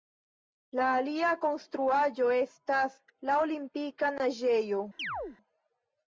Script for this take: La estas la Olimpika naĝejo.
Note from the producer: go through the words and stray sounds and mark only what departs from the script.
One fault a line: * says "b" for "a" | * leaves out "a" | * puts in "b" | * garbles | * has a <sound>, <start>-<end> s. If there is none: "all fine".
* puts in "alia konstruaĵo"
* has a chirp, 5.0-5.4 s